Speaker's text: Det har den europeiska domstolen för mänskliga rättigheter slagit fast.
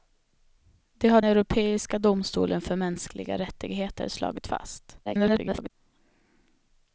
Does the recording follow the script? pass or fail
fail